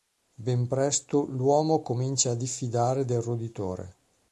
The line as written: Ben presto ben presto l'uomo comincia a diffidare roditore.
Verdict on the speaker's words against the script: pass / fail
fail